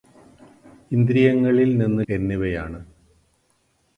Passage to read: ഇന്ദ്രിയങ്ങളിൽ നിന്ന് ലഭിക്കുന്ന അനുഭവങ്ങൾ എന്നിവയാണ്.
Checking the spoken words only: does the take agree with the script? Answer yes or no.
no